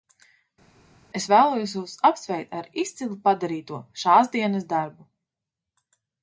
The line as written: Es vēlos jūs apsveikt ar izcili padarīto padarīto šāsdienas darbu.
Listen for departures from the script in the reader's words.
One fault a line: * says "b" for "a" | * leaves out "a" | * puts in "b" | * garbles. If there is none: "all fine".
* leaves out "padarīto"